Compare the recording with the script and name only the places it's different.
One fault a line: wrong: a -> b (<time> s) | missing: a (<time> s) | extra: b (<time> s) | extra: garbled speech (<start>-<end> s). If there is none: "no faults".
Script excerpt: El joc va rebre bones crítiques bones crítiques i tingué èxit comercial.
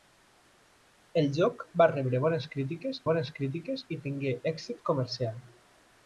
no faults